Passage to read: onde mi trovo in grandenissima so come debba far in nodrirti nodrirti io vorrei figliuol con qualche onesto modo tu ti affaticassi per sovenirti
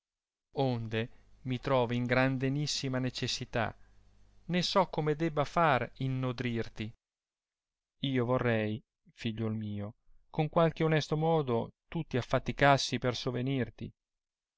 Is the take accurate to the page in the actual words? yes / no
no